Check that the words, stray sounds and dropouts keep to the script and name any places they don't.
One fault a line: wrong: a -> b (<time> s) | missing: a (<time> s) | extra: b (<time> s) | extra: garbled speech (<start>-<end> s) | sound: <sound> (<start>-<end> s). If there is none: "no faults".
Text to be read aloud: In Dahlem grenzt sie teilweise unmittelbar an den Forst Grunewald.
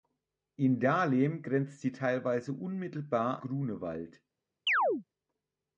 missing: an den Forst (3.4 s)
sound: chirp (4.7-5.0 s)